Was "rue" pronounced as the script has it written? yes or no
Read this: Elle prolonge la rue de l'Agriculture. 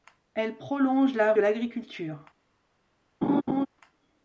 no